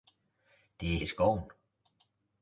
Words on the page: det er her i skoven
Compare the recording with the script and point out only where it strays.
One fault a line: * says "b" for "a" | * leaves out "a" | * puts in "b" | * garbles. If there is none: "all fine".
* leaves out "her"